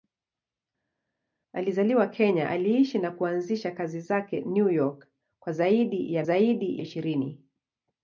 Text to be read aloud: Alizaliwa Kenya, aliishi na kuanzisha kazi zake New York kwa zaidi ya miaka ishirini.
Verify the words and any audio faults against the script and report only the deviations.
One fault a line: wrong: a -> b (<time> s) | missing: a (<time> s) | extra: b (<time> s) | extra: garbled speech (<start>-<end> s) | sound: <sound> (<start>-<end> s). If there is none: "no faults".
wrong: miaka -> zaidi (6.2 s)